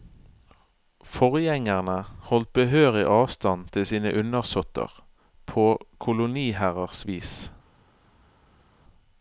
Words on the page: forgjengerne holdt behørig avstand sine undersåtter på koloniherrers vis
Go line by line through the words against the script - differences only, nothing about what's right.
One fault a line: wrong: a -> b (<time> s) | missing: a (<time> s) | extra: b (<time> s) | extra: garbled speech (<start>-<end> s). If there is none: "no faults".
extra: til (3.7 s)